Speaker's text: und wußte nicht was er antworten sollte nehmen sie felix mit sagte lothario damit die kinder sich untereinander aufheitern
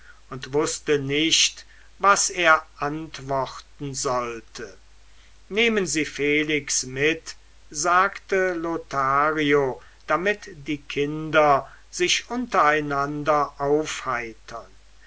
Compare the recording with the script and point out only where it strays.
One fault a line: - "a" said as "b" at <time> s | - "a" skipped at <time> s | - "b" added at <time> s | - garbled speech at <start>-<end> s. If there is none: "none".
none